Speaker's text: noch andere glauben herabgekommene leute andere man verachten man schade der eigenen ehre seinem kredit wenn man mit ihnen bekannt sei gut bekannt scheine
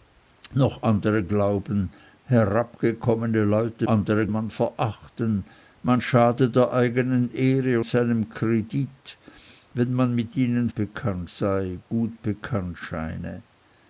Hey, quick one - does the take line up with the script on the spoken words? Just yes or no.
yes